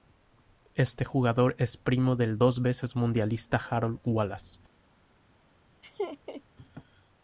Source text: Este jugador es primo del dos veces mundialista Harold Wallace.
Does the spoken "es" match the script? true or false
true